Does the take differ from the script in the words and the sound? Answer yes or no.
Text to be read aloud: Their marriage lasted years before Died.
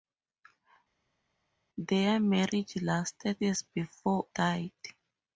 no